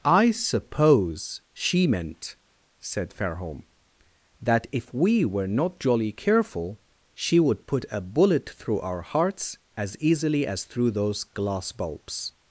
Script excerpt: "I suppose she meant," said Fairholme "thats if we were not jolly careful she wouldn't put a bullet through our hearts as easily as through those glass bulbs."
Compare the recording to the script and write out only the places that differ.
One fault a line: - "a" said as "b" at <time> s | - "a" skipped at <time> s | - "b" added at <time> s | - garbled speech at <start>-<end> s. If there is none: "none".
- "thats" said as "that" at 4.4 s
- "wouldn't" said as "would" at 7.4 s